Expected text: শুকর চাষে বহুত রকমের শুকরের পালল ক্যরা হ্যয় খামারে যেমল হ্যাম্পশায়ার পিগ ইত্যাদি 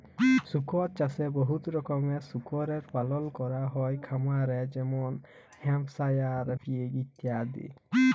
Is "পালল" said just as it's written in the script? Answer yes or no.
yes